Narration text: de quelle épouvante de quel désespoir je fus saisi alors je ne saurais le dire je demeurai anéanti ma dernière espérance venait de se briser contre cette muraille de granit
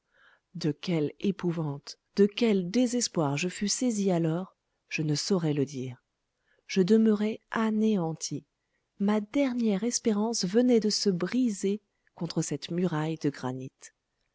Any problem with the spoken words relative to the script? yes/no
no